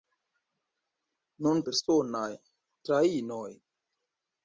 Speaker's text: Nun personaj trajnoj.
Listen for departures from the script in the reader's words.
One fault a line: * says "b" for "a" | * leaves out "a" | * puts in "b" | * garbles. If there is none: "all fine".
all fine